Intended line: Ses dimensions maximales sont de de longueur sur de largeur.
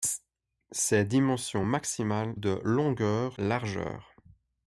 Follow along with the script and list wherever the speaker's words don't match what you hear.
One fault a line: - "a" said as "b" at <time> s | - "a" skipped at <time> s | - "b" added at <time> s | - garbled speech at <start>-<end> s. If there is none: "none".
- "sont" skipped at 2.3 s
- "de" skipped at 2.6 s
- "sur de" skipped at 3.4 s